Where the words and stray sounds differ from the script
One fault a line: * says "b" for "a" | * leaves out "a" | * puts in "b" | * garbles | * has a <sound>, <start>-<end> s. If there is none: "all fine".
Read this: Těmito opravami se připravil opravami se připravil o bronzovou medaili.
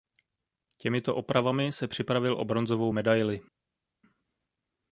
* leaves out "opravami se připravil"